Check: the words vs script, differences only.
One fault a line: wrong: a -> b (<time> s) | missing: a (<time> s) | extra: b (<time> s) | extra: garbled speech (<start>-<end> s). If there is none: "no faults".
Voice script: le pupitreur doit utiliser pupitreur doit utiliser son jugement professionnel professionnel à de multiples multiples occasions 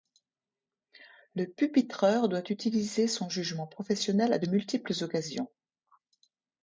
missing: pupitreur doit utiliser (3.1 s)
missing: professionnel (4.3 s)
missing: multiples (4.9 s)